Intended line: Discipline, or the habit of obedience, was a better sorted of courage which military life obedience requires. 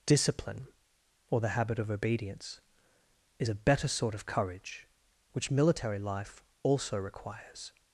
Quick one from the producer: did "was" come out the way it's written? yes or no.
no